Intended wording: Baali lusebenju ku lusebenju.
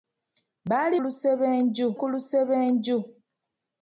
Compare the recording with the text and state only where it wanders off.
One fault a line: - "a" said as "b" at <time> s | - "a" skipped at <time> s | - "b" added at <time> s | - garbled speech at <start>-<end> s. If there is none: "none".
none